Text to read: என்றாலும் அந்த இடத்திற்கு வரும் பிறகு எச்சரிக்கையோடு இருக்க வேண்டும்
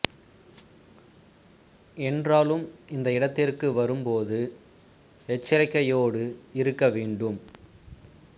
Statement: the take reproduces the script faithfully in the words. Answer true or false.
false